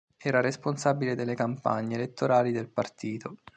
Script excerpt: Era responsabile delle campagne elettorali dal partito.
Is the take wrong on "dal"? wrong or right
wrong